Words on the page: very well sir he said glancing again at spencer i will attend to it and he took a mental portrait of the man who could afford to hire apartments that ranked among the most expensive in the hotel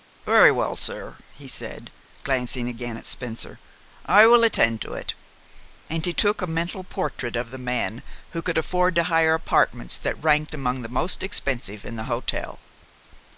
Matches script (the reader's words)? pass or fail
pass